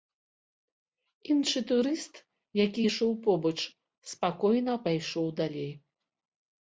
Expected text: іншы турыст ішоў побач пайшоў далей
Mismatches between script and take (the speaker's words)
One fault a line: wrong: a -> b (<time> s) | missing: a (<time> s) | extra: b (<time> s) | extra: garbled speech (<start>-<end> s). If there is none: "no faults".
extra: які (2.6 s)
extra: спакойна (4.1 s)